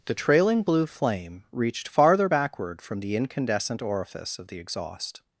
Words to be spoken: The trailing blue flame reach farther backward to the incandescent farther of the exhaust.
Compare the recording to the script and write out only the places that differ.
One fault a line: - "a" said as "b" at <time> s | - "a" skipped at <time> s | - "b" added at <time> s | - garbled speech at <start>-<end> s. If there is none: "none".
- "reach" said as "reached" at 1.5 s
- "to" said as "from" at 2.8 s
- "farther" said as "orifice" at 3.8 s